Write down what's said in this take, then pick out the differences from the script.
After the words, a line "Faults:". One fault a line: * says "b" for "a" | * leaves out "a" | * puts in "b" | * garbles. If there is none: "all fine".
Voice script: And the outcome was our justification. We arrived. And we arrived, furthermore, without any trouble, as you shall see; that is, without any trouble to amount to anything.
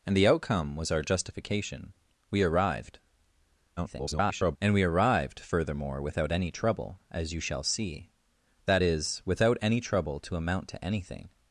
And the outcome was our justification. We arrived. [garbled] And we arrived, furthermore, without any trouble, as you shall see; that is, without any trouble to amount to anything.
Faults:
* garbles